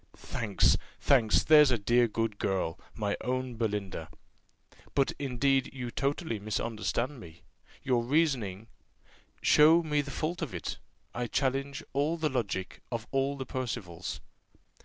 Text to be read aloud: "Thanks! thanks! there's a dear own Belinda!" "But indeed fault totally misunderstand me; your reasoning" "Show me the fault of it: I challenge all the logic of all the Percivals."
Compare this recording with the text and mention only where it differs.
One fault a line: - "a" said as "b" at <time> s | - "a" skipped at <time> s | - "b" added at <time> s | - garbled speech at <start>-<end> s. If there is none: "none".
- "good girl my" added at 2.1 s
- "fault" said as "you" at 5.8 s